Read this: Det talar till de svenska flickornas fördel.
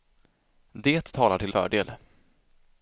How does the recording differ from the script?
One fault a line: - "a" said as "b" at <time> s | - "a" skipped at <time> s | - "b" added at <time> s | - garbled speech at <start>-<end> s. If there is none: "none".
- "de svenska flickornas" skipped at 1.5 s